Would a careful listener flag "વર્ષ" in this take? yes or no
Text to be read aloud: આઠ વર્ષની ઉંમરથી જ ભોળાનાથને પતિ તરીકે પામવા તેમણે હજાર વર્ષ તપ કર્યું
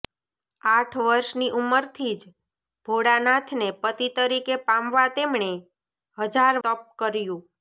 yes